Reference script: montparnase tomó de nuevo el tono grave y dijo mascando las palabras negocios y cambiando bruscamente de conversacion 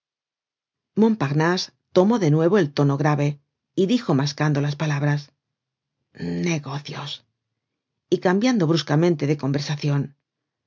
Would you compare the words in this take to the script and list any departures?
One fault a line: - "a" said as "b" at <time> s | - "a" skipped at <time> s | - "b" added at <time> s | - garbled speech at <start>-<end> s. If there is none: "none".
none